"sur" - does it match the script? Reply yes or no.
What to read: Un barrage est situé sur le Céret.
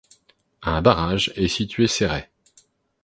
no